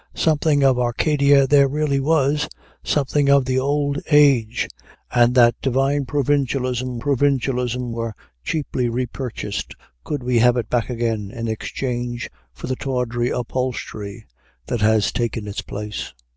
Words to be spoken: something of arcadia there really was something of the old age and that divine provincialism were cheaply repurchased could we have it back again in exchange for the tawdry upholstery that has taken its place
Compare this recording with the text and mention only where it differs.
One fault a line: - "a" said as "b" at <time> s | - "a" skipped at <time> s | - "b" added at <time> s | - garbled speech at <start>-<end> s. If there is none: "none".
- "provincialism" added at 7.0 s